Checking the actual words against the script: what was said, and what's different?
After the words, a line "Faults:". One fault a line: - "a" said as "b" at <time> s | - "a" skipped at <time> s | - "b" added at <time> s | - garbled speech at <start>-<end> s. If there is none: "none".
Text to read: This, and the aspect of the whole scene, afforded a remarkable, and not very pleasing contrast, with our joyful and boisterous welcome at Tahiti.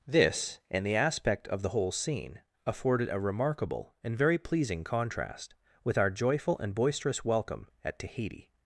This, and the aspect of the whole scene, afforded a remarkable, and very pleasing contrast, with our joyful and boisterous welcome at Tahiti.
Faults:
- "not" skipped at 4.2 s